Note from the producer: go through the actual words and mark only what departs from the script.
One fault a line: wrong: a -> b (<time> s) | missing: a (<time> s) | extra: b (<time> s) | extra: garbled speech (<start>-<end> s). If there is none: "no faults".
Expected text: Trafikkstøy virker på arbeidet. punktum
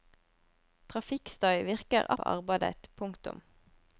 no faults